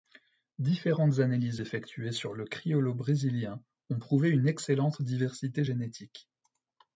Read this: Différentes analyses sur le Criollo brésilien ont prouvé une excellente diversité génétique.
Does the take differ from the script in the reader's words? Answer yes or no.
yes